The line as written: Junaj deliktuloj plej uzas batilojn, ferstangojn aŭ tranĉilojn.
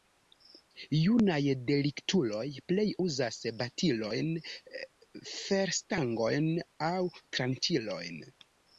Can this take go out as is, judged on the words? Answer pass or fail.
pass